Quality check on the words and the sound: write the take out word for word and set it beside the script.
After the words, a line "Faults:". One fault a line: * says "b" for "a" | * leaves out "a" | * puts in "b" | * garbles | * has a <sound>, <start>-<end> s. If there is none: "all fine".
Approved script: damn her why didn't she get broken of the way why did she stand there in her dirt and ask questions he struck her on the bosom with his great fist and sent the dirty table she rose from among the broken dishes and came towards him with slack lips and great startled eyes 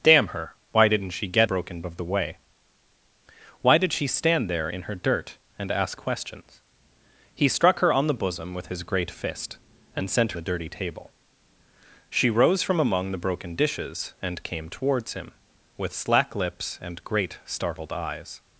damn her why didn't she get broken of the way why did she stand there in her dirt and ask questions he struck her on the bosom with his great fist and sent the dirty table she rose from among the broken dishes and came towards him with slack lips and great startled eyes
Faults:
all fine